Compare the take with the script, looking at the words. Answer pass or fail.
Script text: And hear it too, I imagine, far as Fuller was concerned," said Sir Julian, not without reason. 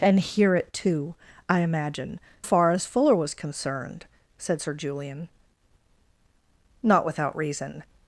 pass